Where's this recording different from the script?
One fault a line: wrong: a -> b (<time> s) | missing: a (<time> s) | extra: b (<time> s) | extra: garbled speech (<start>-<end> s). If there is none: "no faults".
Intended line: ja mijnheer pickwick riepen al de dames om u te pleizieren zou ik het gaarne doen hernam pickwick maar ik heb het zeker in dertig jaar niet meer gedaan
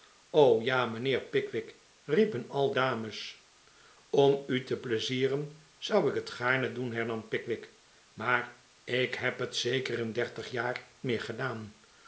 missing: de (2.7 s)
missing: niet (10.9 s)